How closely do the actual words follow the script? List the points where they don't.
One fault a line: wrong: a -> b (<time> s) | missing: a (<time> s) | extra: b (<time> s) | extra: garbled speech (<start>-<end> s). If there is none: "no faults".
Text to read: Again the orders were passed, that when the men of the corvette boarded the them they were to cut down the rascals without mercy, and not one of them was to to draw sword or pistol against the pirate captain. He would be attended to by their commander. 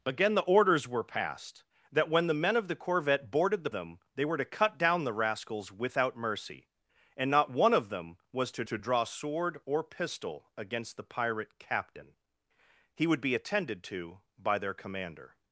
no faults